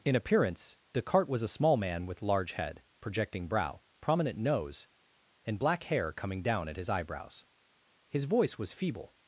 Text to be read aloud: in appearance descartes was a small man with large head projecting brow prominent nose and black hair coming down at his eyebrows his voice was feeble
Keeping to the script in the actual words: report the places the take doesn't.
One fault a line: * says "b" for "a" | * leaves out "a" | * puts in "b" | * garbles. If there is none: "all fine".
all fine